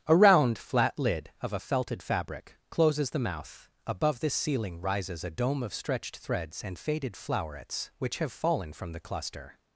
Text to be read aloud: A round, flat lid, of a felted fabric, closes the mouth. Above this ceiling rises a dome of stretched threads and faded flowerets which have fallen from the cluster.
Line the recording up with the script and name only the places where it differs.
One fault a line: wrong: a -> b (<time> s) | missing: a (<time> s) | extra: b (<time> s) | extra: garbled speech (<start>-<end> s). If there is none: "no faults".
no faults